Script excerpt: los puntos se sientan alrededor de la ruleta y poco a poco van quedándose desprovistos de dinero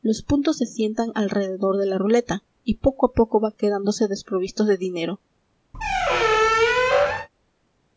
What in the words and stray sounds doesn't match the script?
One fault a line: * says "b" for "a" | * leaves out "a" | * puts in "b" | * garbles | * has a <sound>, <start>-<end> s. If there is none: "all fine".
* has a squeak, 5.7-7.3 s